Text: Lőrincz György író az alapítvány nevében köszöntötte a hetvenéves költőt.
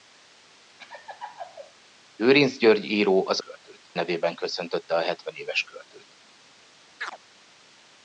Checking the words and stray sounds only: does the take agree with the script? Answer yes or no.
no